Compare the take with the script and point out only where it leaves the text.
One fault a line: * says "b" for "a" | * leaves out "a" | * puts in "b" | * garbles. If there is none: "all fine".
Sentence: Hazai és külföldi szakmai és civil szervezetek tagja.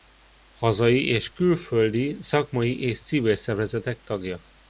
all fine